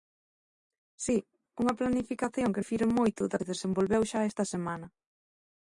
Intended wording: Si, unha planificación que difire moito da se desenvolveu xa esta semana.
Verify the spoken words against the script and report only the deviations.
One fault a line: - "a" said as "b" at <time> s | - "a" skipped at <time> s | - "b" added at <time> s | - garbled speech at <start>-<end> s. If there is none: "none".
none